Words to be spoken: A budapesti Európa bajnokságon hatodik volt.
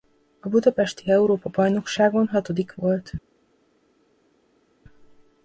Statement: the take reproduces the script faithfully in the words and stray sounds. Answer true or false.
true